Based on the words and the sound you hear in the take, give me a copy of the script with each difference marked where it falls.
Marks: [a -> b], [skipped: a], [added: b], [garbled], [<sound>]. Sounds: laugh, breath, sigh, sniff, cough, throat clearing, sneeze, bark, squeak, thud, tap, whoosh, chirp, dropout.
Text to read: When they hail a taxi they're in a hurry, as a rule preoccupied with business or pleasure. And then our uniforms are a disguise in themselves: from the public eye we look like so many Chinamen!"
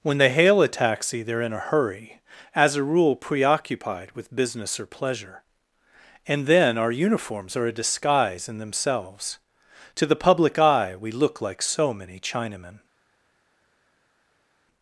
When they hail a taxi they're in a hurry, as a rule preoccupied with business or pleasure. And then our uniforms are a disguise in themselves: [from -> to] the public eye we look like so many Chinamen!"